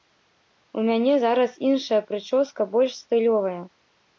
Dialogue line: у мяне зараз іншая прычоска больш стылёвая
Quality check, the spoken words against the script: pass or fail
pass